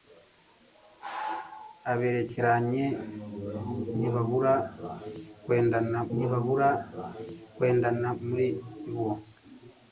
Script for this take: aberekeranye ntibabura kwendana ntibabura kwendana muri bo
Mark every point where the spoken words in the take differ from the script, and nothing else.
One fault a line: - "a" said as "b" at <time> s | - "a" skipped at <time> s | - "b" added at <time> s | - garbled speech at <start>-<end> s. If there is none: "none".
none